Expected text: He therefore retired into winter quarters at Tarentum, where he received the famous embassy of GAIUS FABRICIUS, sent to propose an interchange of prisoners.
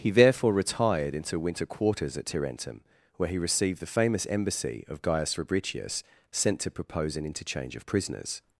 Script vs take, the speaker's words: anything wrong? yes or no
no